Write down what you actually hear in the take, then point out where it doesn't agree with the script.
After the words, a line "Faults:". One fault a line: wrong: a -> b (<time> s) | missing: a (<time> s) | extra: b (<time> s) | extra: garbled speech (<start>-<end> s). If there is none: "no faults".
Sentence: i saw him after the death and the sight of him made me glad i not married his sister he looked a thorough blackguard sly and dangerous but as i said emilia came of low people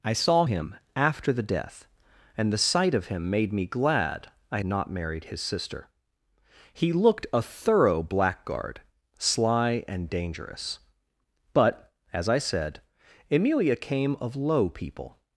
i saw him after the death and the sight of him made me glad i not married his sister he looked a thorough blackguard sly and dangerous but as i said emilia came of low people
Faults:
no faults